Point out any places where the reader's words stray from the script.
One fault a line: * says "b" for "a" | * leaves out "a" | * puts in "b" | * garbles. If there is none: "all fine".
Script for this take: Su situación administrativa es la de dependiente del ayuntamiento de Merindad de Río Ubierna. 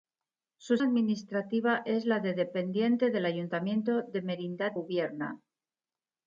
* leaves out "situación"
* leaves out "de Río"